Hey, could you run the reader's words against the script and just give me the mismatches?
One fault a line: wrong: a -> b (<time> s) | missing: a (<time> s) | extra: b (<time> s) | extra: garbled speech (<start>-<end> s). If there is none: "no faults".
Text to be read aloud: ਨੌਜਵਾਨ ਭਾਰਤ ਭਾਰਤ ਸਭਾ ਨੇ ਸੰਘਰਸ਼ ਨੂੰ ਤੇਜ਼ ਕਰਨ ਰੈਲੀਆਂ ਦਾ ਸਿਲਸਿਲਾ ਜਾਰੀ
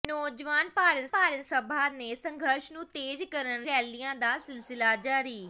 no faults